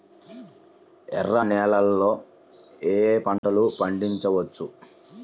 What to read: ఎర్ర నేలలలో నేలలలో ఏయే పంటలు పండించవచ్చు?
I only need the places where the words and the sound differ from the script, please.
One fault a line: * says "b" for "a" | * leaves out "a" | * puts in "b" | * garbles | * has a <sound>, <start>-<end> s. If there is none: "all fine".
* leaves out "నేలలలో"
* has a dropout, 3.4-3.4 s